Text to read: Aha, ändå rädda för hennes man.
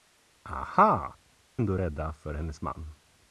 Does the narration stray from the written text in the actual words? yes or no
no